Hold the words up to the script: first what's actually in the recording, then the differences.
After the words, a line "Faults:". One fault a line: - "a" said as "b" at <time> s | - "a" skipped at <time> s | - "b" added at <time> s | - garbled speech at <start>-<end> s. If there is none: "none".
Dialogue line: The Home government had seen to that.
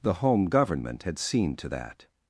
The Home government had seen to that.
Faults:
none